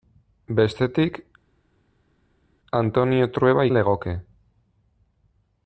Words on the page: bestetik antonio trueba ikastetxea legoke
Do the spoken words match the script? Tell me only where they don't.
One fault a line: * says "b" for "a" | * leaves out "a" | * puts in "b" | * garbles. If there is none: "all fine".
* leaves out "ikastetxea"